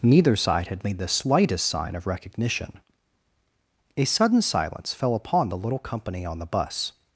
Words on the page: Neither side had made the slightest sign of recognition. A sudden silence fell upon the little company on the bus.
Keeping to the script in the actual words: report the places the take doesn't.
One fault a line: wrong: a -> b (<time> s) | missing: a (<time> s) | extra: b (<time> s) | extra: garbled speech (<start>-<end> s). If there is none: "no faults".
no faults